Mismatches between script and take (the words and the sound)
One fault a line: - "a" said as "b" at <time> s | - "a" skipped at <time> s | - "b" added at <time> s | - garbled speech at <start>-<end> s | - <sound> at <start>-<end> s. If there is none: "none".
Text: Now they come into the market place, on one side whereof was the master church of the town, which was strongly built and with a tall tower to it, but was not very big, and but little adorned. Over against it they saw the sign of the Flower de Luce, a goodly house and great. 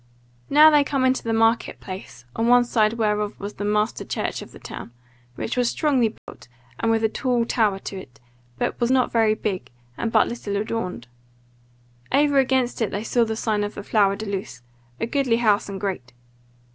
- dropout at 6.2-6.3 s